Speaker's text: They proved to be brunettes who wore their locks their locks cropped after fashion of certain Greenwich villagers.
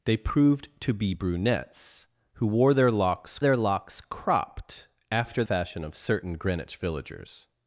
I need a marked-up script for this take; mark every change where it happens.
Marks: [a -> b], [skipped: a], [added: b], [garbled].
They proved to be brunettes who wore their locks their locks cropped after fashion of certain Greenwich villagers.